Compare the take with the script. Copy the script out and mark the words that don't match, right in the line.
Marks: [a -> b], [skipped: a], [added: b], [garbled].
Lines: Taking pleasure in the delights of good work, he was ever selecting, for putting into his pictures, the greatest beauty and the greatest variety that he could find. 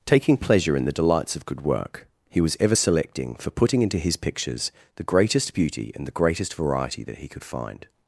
Taking pleasure in the delights of good work, he was ever selecting, for putting into his pictures, the greatest beauty and the greatest variety that he could find.